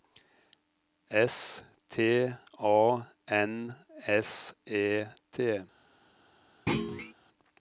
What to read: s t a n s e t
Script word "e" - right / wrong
right